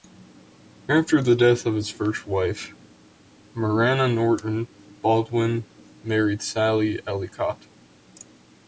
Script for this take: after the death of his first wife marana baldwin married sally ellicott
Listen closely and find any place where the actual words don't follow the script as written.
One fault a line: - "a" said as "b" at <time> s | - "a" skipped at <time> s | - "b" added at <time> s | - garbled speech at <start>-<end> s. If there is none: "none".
- "norton" added at 4.1 s